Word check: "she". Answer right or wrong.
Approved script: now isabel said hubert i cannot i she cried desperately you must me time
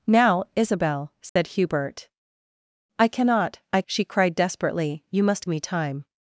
right